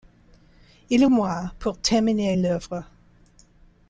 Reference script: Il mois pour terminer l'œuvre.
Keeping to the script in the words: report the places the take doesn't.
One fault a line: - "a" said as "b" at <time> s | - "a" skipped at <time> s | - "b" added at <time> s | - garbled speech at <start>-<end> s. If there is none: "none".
none